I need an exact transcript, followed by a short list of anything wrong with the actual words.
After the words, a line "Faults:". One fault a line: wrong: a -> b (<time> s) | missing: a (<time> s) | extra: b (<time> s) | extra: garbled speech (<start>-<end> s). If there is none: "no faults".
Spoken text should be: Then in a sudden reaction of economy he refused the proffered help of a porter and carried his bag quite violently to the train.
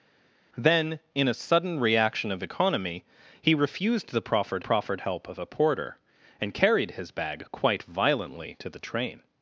Then in a sudden reaction of economy he refused the proffered proffered help of a porter and carried his bag quite violently to the train.
Faults:
extra: proffered (4.6 s)